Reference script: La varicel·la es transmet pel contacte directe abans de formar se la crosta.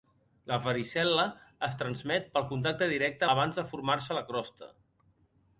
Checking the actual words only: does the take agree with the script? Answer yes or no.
yes